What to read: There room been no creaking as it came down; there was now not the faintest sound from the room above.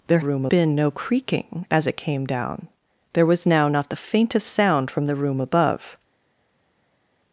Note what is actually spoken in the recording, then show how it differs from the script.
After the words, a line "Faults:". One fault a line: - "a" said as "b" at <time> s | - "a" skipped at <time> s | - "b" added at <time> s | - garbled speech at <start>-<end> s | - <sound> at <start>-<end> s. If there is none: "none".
There room been no creaking as it came down; there was now not the faintest sound from the room above.
Faults:
none